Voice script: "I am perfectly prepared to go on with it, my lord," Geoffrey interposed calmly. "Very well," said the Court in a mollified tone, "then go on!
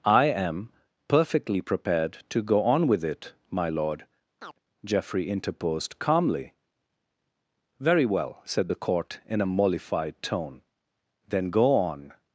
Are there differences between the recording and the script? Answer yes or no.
no